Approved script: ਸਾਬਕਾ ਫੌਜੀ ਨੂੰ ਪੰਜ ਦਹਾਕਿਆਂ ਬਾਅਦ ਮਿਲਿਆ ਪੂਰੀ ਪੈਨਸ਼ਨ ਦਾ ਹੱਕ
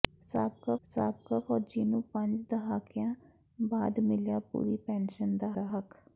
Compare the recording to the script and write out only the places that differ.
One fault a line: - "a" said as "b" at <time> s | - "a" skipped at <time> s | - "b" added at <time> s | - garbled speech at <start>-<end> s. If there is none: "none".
- "ਸਾਬਕਾ" added at 0.8 s
- "ਦਾ" added at 5.5 s